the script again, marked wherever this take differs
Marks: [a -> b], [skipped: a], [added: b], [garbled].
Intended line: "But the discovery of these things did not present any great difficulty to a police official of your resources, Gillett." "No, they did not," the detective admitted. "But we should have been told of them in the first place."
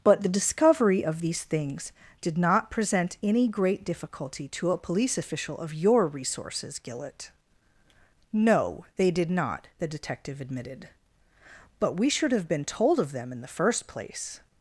"But the discovery of these things did not present any great difficulty to a police official of your resources, Gillett." "No, they did not," the detective admitted. "But we should have been told of them in the first place."